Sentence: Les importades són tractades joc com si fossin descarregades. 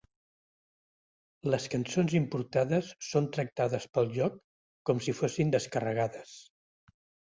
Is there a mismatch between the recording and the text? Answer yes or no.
yes